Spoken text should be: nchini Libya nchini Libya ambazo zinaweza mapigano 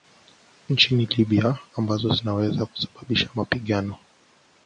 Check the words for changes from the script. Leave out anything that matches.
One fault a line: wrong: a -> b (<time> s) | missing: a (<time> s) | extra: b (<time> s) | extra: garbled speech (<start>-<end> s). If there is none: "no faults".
missing: nchini Libya (1.6 s)
extra: kusababisha (2.6 s)